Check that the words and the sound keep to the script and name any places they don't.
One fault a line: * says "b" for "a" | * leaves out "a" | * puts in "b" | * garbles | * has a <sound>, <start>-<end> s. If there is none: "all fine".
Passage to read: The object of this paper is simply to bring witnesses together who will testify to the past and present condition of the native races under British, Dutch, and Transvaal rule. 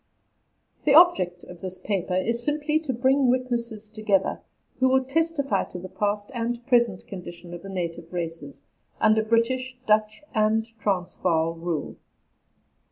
all fine